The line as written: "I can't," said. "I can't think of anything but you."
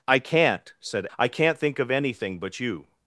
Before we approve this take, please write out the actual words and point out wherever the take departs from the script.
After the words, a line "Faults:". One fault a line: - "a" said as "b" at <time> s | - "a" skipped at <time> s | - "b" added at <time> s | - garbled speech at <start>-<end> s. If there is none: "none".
"I can't," said. "I can't think of anything but you."
Faults:
none